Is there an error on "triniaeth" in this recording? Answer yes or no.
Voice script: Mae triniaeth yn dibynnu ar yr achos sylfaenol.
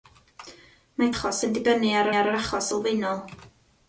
yes